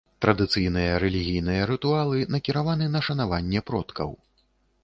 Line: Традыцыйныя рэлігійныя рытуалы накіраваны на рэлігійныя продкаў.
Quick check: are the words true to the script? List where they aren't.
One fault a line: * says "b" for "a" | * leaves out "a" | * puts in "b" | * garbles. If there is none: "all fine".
* says "шанаванне" for "рэлігійныя"